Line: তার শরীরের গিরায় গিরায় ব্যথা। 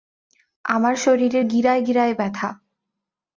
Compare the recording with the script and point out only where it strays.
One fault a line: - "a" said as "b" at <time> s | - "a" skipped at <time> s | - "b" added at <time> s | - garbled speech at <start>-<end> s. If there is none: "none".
- "তার" said as "আমার" at 0.7 s